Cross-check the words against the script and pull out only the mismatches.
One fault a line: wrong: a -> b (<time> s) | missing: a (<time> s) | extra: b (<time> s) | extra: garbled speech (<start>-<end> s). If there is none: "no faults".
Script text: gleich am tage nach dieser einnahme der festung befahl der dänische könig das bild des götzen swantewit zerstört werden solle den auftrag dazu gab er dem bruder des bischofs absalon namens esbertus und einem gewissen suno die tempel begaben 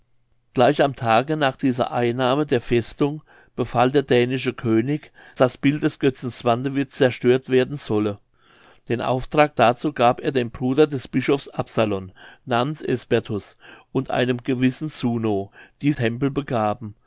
no faults